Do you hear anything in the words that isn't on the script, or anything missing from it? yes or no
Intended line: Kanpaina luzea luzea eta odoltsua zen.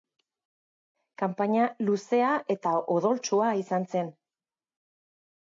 yes